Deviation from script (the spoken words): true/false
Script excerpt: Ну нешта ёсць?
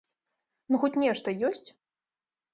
true